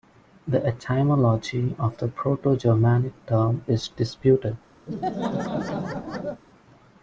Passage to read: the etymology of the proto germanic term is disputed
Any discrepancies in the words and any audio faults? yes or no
yes